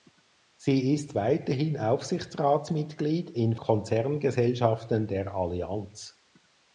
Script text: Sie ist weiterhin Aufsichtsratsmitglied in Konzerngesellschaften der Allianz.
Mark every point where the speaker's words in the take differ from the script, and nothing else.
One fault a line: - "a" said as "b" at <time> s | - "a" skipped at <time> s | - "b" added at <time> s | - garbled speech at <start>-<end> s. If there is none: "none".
none